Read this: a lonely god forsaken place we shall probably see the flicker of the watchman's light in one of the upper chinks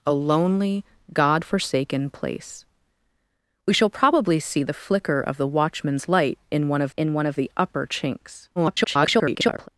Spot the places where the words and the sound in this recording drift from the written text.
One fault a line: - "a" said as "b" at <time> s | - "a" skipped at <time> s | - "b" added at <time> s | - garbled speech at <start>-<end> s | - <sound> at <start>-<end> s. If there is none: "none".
- "in one of" added at 6.9 s
- garbled speech at 8.6-9.7 s